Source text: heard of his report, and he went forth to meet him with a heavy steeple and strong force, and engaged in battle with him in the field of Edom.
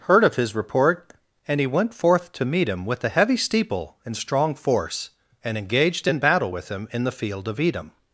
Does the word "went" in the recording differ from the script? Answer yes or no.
no